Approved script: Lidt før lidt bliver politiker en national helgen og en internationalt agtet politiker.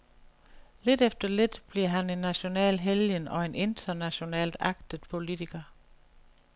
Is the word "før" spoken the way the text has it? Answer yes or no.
no